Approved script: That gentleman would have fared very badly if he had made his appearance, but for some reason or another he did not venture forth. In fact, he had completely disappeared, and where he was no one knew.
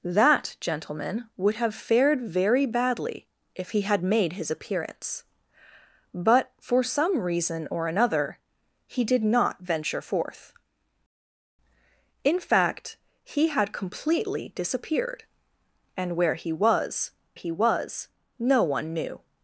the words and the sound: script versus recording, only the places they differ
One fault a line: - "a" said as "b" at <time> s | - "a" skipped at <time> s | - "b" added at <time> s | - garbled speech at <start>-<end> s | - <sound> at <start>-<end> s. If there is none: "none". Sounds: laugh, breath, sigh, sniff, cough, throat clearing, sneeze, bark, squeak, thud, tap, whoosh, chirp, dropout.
- "he was" added at 17.3 s